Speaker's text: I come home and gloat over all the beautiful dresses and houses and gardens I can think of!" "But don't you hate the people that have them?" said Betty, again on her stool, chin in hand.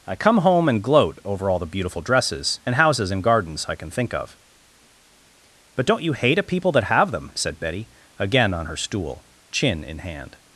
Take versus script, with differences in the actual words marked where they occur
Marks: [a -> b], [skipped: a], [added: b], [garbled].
I come home and gloat over all the beautiful dresses and houses and gardens I can think of!" "But don't you hate [the -> a] people that have them?" said Betty, again on her stool, chin in hand.